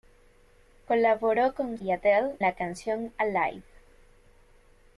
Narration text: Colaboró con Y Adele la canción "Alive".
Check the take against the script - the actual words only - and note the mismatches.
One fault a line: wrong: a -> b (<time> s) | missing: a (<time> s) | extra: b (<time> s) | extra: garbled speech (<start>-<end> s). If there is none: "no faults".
no faults